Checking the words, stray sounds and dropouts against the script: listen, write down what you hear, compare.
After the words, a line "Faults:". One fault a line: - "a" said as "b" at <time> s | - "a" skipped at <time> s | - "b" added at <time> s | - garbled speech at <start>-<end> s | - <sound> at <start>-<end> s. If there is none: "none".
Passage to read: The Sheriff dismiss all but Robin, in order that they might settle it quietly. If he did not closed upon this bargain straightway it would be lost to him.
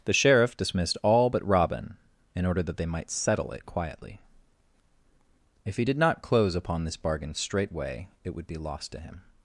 The Sheriff dismissed all but Robin, in order that they might settle it quietly. If he did not close upon this bargain straightway it would be lost to him.
Faults:
- "dismiss" said as "dismissed" at 0.6 s
- "closed" said as "close" at 6.2 s